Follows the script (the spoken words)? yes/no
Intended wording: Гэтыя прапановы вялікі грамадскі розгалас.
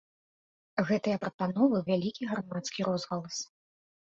yes